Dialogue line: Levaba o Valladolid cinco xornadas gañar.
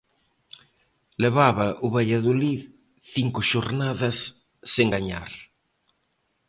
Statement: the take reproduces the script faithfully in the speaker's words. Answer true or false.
false